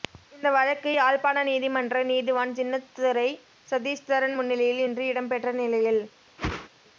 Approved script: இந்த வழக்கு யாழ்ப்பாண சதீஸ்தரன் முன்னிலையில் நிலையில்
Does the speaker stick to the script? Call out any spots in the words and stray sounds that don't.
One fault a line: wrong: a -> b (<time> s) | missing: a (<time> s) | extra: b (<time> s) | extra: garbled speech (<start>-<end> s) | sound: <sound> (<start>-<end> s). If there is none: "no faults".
extra: நீதிமன்ற நீதிவான் சின்னத்துரை (1.5 s)
extra: இன்று இடம்பெற்ற (4.8 s)
sound: whoosh (6.4-6.7 s)